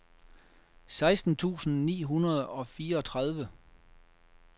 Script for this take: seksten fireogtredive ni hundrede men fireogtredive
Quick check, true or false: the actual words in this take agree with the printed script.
false